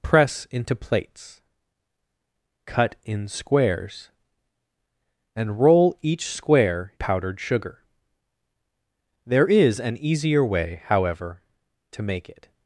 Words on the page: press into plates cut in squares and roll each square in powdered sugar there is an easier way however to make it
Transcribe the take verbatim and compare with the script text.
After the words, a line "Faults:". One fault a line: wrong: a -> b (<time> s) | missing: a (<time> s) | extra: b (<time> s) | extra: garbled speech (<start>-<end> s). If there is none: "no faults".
press into plates cut in squares and roll each square powdered sugar there is an easier way however to make it
Faults:
missing: in (6.9 s)